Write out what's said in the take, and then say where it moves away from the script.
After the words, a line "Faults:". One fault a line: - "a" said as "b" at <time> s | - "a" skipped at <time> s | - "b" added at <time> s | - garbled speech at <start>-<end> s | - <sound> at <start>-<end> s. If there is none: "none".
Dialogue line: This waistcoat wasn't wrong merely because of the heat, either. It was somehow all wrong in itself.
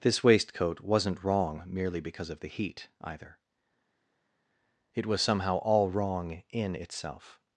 This waistcoat wasn't wrong merely because of the heat, either. It was somehow all wrong in itself.
Faults:
none